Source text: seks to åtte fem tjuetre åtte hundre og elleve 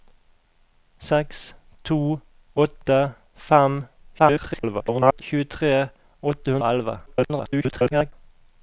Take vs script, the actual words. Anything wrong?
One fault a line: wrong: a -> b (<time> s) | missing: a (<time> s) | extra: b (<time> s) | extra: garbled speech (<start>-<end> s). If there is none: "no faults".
extra: garbled speech (4.2-5.2 s)
missing: hundre (6.6 s)
extra: garbled speech (7.1-8.1 s)